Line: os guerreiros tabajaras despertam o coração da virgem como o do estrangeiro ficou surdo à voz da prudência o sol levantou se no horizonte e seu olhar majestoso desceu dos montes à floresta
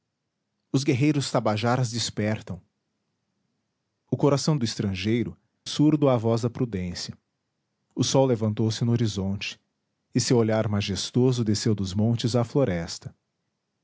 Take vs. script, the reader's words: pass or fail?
fail